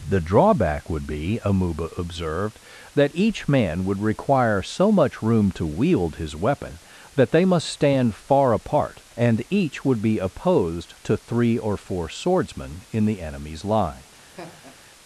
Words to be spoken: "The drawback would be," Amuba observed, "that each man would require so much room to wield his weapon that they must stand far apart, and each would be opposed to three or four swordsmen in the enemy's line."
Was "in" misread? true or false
false